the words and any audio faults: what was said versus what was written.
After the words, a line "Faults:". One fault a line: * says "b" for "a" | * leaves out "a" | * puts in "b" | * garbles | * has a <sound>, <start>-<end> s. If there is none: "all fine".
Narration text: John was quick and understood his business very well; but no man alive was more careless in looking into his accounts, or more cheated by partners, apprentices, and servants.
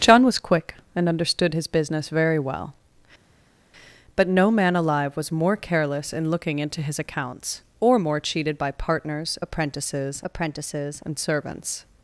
John was quick and understood his business very well; but no man alive was more careless in looking into his accounts, or more cheated by partners, apprentices apprentices, and servants.
Faults:
* puts in "apprentices"